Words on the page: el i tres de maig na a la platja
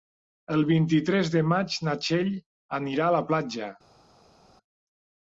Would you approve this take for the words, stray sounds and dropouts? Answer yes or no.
no